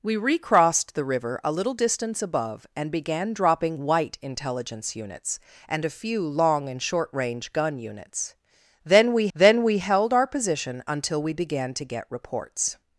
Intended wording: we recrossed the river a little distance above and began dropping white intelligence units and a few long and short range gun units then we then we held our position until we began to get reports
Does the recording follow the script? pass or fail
pass